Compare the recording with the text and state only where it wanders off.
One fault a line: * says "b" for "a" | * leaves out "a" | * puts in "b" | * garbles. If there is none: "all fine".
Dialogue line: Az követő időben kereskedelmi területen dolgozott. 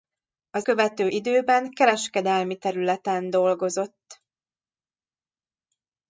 all fine